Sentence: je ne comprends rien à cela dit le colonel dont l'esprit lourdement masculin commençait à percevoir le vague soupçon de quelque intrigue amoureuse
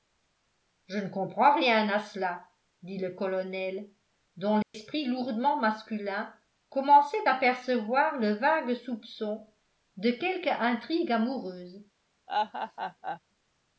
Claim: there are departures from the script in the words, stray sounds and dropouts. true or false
true